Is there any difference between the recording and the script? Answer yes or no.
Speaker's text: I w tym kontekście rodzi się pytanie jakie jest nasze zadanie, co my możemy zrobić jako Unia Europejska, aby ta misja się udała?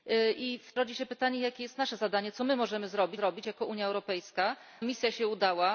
yes